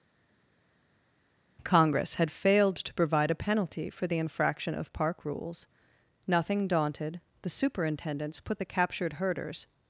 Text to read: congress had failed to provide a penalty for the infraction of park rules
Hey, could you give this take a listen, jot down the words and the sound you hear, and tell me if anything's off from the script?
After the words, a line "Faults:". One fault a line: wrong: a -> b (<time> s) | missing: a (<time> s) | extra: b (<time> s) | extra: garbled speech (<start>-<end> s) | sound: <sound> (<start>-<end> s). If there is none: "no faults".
congress had failed to provide a penalty for the infraction of park rules nothing daunted the superintendents put the captured herders
Faults:
extra: nothing daunted the superintendents put the captured herders (6.3 s)